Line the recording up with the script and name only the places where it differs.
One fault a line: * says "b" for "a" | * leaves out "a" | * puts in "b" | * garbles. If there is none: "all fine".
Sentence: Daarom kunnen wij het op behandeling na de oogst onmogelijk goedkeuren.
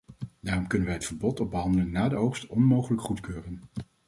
* puts in "verbod"